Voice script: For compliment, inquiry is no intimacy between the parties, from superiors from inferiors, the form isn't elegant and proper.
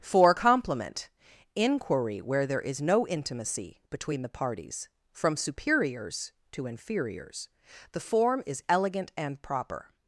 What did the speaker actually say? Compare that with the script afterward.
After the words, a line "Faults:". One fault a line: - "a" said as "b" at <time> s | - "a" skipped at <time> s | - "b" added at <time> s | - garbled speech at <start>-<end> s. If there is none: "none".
For compliment, inquiry where there is no intimacy between the parties, from superiors to inferiors, the form is elegant and proper.
Faults:
- "where there" added at 2.2 s
- "from" said as "to" at 6.5 s
- "isn't" said as "is" at 8.5 s